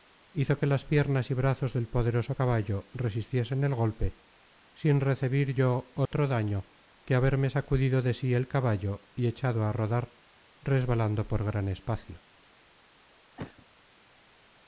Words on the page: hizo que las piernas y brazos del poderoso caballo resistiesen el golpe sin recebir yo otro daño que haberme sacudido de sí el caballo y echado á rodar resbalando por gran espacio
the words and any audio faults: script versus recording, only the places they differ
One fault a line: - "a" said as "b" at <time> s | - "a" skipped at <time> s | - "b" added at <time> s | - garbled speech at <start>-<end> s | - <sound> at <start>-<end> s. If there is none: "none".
- dropout at 6.1-6.1 s
- cough at 13.4-13.7 s